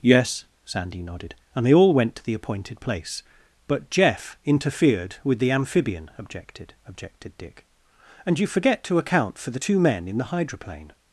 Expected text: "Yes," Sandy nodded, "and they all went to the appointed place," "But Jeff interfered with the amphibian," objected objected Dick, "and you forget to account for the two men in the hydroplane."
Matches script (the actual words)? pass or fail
pass